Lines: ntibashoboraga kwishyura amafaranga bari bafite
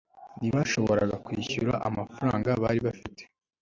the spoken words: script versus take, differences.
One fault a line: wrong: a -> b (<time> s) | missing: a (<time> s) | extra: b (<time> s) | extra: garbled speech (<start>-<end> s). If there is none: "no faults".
no faults